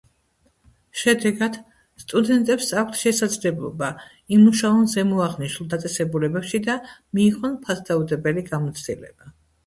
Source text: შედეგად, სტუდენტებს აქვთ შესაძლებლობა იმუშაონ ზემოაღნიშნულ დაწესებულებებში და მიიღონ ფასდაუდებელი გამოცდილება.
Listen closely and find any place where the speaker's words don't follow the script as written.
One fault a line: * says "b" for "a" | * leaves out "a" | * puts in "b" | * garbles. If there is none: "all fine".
all fine